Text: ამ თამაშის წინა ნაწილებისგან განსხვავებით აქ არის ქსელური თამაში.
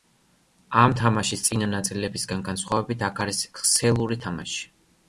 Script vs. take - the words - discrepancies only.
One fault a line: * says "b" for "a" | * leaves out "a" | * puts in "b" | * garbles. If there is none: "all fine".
all fine